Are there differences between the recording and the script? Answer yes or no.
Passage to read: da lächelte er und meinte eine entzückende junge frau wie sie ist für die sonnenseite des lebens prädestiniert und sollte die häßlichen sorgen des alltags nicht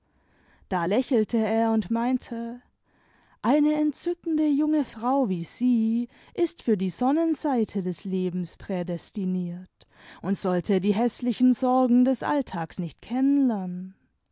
no